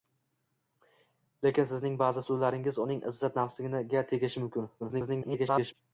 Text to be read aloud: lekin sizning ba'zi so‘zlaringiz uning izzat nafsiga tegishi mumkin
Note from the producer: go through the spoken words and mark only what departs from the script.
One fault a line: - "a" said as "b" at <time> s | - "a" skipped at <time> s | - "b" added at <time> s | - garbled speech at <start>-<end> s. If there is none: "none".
- garbled speech at 4.8-5.7 s